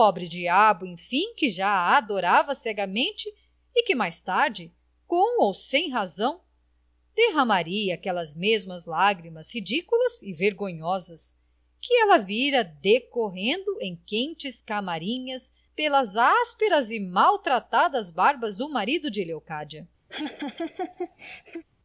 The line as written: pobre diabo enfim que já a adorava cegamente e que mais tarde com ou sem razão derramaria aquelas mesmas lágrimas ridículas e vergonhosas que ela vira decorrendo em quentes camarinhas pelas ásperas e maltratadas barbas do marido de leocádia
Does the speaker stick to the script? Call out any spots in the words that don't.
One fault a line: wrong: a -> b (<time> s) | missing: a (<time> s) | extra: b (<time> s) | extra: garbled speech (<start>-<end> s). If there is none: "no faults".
no faults